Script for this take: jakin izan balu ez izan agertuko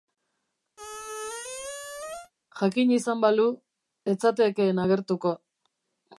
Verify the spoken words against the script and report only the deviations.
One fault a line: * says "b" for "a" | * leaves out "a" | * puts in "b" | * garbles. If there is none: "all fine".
* says "zatekeen" for "izan"